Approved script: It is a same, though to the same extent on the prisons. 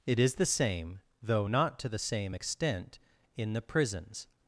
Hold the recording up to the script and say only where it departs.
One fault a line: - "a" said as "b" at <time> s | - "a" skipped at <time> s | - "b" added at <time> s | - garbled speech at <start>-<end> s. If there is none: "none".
- "a" said as "the" at 0.3 s
- "not" added at 1.4 s
- "on" said as "in" at 3.4 s